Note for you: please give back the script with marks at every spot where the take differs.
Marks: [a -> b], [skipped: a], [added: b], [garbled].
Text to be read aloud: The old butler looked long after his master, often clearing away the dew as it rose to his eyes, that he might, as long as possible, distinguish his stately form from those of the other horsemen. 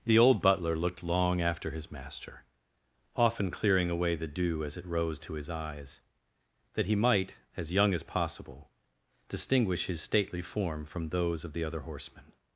The old butler looked long after his master, often clearing away the dew as it rose to his eyes, that he might, as [long -> young] as possible, distinguish his stately form from those of the other horsemen.